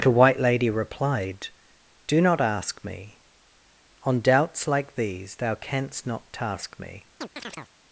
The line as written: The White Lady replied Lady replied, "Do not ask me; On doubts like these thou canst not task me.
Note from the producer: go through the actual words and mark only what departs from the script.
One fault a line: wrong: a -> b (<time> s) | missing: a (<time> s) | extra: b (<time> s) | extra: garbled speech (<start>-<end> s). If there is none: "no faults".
missing: Lady replied (1.5 s)